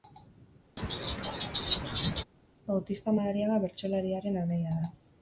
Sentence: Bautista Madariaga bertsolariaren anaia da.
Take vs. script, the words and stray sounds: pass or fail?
fail